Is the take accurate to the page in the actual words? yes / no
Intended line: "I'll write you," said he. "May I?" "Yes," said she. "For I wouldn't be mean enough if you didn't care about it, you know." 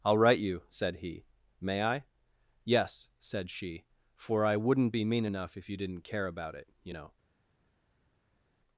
yes